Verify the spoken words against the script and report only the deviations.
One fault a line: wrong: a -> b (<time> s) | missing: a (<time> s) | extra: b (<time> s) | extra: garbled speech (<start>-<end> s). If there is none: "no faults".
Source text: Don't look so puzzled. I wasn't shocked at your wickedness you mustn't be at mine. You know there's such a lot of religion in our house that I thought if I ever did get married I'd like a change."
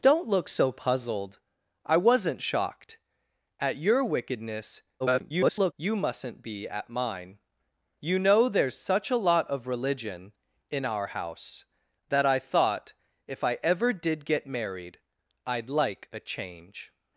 extra: garbled speech (5.0-5.7 s)